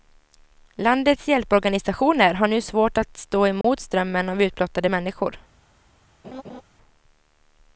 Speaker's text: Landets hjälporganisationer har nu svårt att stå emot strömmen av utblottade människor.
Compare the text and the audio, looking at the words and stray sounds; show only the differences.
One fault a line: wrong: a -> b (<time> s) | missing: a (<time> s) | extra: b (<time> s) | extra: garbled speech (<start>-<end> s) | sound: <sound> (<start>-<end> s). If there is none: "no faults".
sound: dropout (3.6-3.6 s)
sound: laugh (6.2-6.6 s)